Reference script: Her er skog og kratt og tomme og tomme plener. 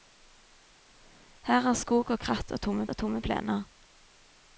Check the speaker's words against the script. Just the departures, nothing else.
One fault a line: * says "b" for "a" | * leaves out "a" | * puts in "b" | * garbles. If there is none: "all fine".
all fine